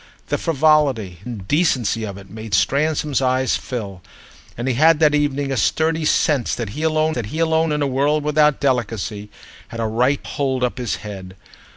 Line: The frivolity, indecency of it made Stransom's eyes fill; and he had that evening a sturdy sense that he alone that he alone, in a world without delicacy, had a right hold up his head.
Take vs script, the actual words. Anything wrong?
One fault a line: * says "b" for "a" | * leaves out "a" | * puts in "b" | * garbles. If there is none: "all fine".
all fine